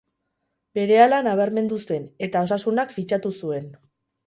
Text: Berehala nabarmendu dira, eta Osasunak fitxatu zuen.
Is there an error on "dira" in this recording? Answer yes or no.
yes